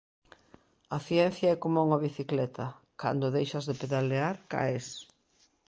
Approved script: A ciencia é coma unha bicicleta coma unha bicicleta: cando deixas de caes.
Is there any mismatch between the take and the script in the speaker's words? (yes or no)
yes